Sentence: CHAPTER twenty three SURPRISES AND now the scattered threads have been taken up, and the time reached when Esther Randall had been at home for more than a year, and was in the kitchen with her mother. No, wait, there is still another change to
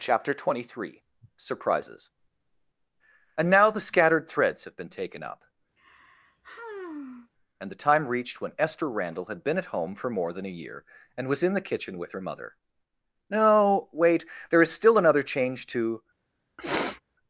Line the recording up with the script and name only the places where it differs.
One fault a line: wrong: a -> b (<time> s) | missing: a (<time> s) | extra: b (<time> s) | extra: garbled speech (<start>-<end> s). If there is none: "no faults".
no faults